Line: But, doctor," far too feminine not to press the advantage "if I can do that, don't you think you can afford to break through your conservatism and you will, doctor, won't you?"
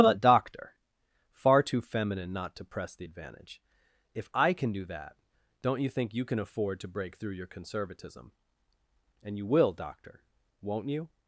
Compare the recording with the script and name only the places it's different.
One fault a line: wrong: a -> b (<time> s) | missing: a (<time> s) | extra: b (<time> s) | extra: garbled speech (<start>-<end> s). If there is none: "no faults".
no faults